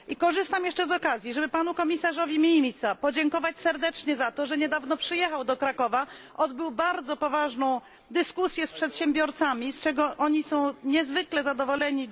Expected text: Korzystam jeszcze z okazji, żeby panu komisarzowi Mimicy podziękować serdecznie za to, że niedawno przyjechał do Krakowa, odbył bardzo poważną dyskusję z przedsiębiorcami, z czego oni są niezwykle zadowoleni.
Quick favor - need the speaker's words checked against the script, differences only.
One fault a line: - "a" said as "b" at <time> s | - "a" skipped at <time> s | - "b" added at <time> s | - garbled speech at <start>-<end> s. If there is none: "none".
none